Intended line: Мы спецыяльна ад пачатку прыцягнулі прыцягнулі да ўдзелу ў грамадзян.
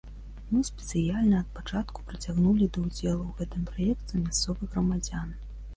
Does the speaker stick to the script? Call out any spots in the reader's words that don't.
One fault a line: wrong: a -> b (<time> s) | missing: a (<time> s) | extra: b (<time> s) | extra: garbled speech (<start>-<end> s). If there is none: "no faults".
missing: прыцягнулі (2.7 s)
extra: гэтым праекце мясцовых (3.4 s)